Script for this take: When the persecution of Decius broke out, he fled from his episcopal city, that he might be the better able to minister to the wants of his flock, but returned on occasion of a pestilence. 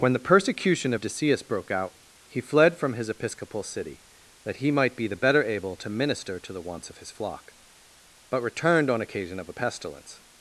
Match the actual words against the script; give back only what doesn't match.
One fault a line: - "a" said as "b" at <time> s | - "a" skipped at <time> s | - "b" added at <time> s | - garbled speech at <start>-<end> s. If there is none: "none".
none